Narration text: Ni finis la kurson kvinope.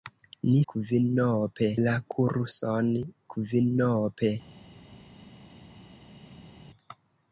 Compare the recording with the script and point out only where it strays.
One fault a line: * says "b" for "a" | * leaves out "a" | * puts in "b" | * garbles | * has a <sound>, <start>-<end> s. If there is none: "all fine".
* says "kvinope" for "finis"